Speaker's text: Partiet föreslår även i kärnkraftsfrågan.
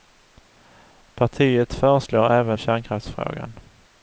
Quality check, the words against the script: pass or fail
pass